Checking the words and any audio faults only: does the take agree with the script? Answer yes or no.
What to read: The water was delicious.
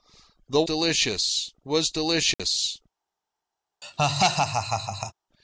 no